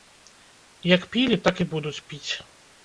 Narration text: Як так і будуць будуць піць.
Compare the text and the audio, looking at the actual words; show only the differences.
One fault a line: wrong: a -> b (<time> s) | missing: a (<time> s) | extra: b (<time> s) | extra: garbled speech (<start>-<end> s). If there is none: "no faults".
extra: пілі (1.1 s)
missing: будуць (2.0 s)